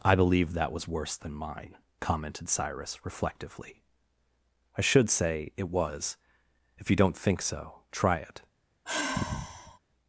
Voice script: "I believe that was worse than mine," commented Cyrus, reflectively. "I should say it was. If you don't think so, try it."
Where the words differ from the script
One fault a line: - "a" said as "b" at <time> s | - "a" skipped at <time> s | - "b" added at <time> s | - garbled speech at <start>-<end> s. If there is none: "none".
none